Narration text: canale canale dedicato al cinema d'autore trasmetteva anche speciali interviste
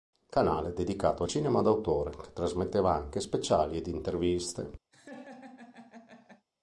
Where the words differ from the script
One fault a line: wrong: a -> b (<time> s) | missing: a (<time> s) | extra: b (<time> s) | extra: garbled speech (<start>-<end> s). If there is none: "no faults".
missing: canale (0.7 s)
extra: che (2.1 s)
extra: ed (3.8 s)